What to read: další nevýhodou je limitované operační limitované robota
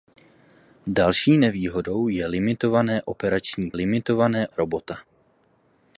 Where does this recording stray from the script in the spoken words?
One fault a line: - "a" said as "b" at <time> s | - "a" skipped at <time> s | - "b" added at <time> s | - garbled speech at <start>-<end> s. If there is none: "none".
none